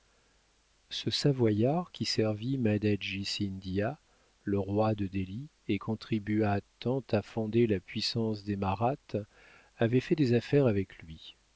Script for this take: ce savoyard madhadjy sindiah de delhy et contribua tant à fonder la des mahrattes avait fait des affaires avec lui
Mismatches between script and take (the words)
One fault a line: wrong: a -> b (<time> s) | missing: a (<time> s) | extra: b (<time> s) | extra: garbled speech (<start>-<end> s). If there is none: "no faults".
extra: qui servit (1.9 s)
extra: le roi (4.4 s)
extra: puissance (7.8 s)